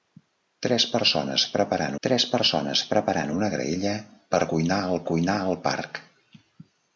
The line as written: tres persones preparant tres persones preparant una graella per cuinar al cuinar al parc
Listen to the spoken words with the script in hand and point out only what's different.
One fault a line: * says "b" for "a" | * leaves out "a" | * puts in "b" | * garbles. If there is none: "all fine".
all fine